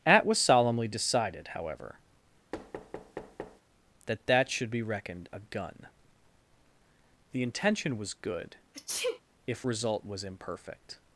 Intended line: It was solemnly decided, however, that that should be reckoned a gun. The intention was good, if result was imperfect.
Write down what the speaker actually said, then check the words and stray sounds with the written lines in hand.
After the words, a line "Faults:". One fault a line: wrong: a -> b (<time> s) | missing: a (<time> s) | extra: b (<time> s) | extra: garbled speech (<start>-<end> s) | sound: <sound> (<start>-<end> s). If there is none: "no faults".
At was solemnly decided, however, that that should be reckoned a gun. The intention was good, if result was imperfect.
Faults:
wrong: It -> At (0.1 s)
sound: thud (2.5-3.6 s)
sound: sneeze (8.7-9.2 s)